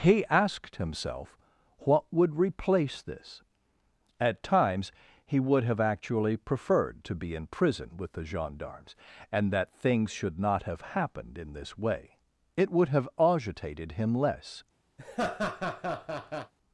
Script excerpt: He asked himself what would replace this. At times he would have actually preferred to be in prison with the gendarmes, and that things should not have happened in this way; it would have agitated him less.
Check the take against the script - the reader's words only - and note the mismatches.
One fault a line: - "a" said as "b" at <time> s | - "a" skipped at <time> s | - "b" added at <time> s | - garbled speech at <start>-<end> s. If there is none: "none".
none